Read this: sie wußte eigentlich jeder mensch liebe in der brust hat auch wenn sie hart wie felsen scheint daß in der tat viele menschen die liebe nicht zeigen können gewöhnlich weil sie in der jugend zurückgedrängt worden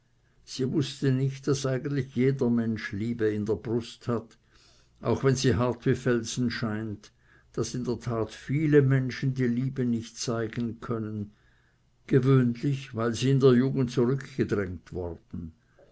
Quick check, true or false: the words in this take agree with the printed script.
false